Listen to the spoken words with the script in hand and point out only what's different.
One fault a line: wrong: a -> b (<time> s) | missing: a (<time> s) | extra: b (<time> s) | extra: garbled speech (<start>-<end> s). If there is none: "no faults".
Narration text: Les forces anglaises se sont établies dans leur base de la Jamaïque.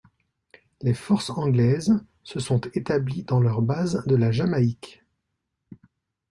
no faults